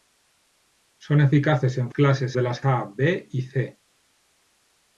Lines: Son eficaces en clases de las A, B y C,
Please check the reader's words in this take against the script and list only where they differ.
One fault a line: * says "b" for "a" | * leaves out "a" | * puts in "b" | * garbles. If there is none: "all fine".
all fine